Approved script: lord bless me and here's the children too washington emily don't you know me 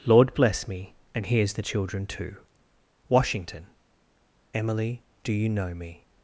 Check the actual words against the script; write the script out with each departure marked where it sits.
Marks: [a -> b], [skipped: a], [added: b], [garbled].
lord bless me and here's the children too washington emily [don't -> do] you know me